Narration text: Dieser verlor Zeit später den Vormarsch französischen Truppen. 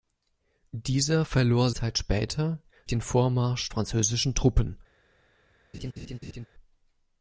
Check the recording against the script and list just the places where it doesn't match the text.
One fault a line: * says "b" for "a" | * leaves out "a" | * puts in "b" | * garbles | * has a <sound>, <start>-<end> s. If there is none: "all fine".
* has a laugh, 5.7-6.5 s